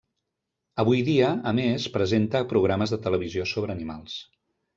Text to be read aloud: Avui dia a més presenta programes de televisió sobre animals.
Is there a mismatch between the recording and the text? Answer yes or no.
no